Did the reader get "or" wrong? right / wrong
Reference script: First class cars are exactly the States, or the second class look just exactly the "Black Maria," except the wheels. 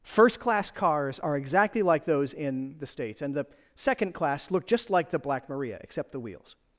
wrong